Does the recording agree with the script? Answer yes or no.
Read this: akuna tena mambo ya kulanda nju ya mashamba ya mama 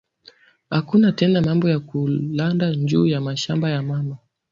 yes